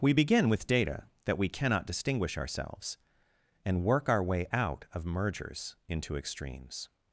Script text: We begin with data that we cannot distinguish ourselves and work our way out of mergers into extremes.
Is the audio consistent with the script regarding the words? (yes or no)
yes